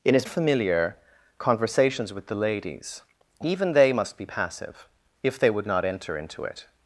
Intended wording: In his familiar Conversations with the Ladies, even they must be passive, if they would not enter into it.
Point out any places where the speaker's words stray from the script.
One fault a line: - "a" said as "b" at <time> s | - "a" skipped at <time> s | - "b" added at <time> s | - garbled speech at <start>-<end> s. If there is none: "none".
none